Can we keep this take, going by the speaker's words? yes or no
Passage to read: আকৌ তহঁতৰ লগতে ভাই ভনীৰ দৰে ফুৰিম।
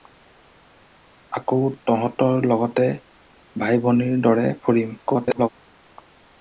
no